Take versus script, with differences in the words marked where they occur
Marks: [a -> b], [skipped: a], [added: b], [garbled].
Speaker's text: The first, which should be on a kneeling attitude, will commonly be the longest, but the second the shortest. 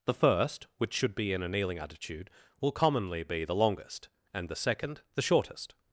The first, which should be [on -> in] a kneeling attitude, will commonly be the longest, [but -> and] the second the shortest.